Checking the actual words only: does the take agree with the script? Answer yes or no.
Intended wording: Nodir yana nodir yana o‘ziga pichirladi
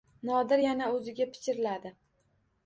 no